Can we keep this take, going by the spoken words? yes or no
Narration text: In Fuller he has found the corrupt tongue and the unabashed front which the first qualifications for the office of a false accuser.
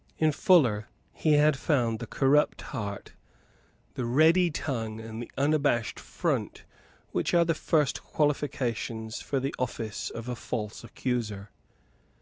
no